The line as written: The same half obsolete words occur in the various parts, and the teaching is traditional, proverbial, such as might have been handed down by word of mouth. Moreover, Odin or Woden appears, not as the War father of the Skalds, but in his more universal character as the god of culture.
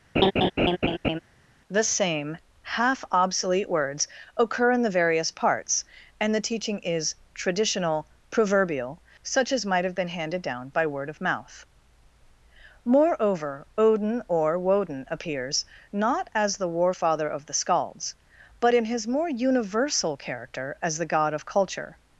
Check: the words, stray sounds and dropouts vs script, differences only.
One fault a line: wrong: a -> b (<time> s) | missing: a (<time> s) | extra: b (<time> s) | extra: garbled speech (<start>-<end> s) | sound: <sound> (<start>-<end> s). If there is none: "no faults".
sound: laugh (0.2-1.2 s)